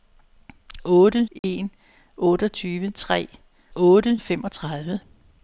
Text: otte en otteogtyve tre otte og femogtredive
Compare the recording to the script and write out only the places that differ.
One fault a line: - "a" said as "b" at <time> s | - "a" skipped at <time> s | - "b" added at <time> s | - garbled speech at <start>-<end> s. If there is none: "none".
none